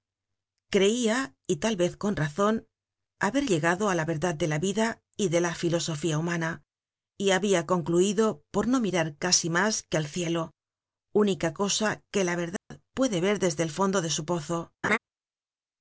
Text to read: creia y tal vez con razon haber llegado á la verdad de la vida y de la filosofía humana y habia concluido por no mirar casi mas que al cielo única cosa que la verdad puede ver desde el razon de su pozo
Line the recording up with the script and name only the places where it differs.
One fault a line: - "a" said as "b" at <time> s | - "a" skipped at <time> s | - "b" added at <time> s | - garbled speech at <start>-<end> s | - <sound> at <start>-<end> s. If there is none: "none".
- dropout at 12.6-12.7 s
- "razon" said as "fondo" at 13.8 s
- laugh at 14.8-15.0 s